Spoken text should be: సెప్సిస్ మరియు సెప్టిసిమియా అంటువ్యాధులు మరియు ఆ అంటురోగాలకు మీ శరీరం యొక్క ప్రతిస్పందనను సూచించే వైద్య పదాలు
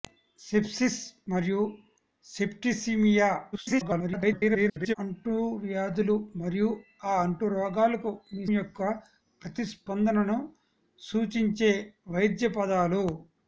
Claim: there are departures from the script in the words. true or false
true